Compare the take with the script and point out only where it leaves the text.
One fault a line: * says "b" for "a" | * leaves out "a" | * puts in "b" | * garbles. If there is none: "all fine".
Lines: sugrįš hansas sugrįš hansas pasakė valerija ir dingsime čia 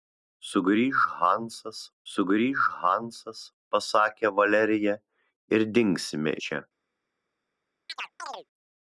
all fine